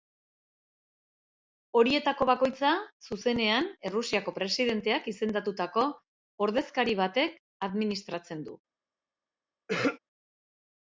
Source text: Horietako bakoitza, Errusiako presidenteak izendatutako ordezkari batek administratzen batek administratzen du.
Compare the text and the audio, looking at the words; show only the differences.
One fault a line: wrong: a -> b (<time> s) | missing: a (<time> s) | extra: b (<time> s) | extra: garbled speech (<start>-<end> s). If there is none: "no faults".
extra: zuzenean (3.1 s)
missing: batek administratzen (8.4 s)